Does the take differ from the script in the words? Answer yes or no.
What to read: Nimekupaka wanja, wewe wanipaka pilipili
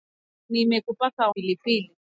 yes